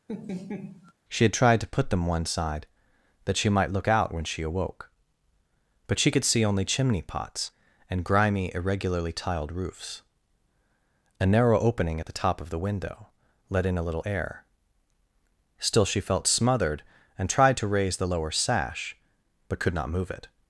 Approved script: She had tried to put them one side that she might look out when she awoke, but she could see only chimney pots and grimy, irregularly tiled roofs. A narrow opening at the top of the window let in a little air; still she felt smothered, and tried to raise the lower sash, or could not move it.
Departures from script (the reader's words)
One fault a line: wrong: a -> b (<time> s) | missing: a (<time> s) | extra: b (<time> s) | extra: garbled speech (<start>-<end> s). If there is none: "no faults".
wrong: or -> but (19.5 s)